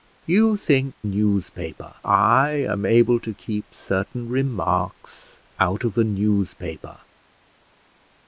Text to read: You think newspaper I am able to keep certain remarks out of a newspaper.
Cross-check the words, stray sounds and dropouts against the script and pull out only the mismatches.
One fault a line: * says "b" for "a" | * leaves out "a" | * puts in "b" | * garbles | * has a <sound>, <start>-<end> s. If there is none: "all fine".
all fine